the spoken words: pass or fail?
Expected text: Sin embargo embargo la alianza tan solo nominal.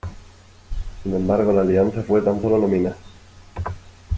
fail